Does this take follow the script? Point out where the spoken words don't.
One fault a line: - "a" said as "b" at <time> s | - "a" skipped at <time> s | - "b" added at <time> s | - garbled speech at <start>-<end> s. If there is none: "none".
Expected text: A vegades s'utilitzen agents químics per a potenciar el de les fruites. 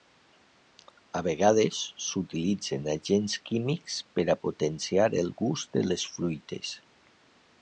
- "gust" added at 5.4 s